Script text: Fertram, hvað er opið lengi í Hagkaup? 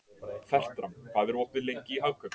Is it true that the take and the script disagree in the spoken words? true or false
false